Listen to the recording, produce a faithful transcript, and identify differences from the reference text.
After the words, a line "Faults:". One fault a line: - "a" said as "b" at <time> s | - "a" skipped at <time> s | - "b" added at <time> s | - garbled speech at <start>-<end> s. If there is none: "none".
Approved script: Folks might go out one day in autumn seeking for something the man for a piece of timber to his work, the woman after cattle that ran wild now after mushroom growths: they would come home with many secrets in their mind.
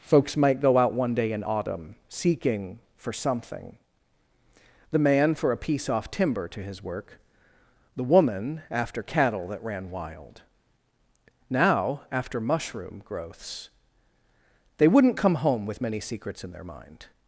Folks might go out one day in autumn seeking for something the man for a piece off timber to his work, the woman after cattle that ran wild now after mushroom growths: they wouldn't come home with many secrets in their mind.
Faults:
- "of" said as "off" at 5.9 s
- "would" said as "wouldn't" at 14.9 s